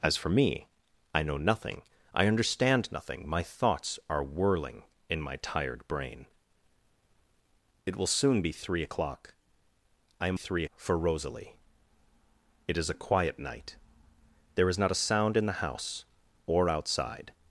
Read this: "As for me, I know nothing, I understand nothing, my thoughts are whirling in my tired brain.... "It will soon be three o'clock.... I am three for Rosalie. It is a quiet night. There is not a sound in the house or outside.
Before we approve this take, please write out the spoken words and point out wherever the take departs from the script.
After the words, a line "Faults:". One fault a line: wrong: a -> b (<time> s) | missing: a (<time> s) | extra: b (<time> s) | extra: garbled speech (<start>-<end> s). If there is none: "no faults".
"As for me, I know nothing, I understand nothing, my thoughts are whirling in my tired brain.... "It will soon be three o'clock.... I am three for Rosalie. It is a quiet night. There is not a sound in the house or outside.
Faults:
no faults